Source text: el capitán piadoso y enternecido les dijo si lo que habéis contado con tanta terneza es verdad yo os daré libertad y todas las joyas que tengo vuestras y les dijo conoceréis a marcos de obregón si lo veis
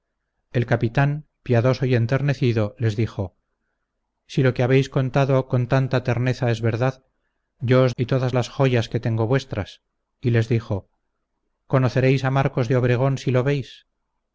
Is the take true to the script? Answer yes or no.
no